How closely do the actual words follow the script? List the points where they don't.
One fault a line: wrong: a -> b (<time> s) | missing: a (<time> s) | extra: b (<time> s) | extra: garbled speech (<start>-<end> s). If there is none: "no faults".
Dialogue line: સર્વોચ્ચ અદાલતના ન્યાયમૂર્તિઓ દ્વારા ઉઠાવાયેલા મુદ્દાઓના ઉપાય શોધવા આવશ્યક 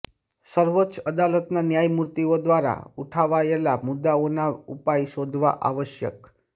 no faults